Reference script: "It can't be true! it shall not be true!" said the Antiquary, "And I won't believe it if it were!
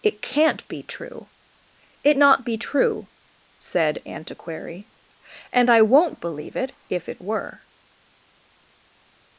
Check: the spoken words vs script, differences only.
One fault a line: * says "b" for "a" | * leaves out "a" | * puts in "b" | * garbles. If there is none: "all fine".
* leaves out "shall"
* leaves out "the"